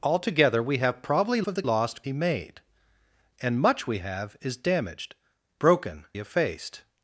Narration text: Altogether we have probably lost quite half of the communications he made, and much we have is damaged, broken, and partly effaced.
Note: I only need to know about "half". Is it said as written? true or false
false